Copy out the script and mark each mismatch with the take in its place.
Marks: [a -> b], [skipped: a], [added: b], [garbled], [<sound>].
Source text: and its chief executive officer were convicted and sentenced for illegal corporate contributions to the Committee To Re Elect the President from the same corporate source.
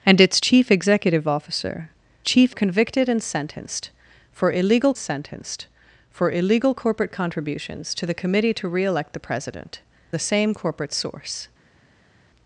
and its chief executive officer [were -> chief] convicted and sentenced for illegal [added: sentenced for illegal] corporate contributions to the Committee To Re Elect the President [skipped: from] the same corporate source.